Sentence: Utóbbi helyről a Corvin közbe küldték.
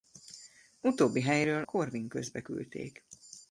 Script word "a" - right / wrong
wrong